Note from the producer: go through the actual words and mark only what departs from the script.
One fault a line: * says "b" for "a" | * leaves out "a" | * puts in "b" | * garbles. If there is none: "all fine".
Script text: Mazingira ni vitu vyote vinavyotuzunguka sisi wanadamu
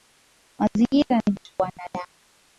* leaves out "vyote vinavyotuzunguka sisi"